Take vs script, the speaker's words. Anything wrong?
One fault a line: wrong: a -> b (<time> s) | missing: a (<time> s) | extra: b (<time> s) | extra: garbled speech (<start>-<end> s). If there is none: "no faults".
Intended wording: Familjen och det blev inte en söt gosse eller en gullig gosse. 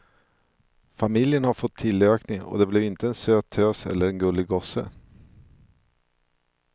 extra: har fått tillökning (1.4 s)
wrong: gosse -> tös (3.5 s)